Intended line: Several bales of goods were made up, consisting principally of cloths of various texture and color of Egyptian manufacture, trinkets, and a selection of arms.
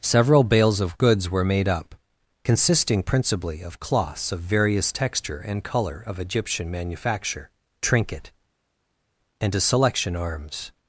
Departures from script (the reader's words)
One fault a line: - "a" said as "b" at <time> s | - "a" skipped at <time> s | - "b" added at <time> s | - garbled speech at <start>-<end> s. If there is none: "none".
- "trinkets" said as "trinket" at 7.8 s
- "of" skipped at 10.1 s